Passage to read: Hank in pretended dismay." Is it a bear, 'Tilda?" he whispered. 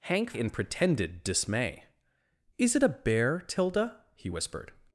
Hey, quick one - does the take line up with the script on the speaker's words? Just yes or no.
yes